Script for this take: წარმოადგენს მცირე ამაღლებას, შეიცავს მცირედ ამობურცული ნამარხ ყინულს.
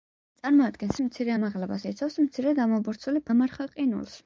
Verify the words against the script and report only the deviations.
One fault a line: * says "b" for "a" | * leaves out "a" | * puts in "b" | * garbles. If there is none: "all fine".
all fine